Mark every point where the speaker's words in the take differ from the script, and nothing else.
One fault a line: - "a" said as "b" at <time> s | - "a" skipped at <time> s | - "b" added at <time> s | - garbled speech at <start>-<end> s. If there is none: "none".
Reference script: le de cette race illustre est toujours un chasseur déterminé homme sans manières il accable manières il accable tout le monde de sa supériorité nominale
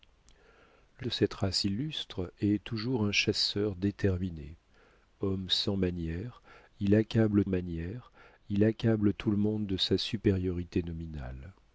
none